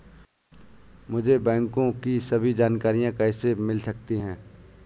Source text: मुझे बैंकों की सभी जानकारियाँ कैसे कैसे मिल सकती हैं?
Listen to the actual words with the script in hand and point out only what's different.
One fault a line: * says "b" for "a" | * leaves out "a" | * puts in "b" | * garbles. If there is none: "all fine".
* leaves out "कैसे"